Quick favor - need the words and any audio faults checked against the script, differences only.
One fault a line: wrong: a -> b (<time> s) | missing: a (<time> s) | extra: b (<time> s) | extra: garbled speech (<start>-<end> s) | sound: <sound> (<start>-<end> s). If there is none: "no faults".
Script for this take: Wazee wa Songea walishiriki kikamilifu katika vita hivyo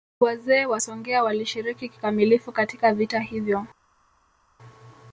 no faults